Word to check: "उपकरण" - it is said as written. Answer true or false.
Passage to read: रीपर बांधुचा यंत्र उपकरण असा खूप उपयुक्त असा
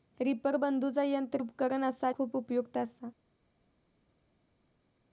true